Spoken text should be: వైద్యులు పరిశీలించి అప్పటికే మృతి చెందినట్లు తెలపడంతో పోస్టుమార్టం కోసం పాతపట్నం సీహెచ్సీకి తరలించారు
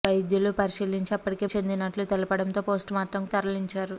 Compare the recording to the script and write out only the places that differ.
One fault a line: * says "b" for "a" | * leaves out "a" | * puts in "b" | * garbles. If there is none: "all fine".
* leaves out "మృతి"
* leaves out "కోసం పాతపట్నం సీహెచ్సీకి"